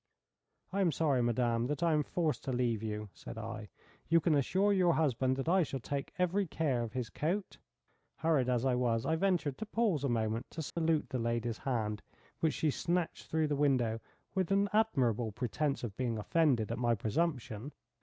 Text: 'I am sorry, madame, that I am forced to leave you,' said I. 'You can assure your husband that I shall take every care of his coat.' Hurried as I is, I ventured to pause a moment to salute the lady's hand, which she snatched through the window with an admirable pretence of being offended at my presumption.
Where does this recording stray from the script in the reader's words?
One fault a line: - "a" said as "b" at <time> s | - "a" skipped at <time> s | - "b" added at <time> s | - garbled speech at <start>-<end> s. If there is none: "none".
- "is" said as "was" at 8.7 s